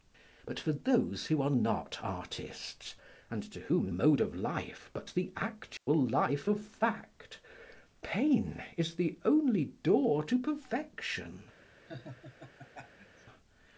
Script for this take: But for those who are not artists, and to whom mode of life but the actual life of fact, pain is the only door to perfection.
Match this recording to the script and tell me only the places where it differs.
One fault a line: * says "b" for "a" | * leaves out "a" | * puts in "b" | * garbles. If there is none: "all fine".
all fine